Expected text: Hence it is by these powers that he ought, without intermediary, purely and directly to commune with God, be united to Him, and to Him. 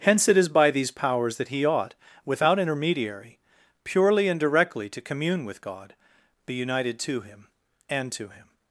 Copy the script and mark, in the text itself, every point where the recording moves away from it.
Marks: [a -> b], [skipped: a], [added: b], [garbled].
Hence it is by these powers that he ought, without intermediary, purely and directly to commune with God, be united to Him, and to Him.